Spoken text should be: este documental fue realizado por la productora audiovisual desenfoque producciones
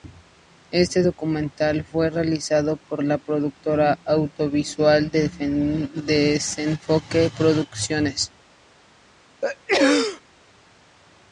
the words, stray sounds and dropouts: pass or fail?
fail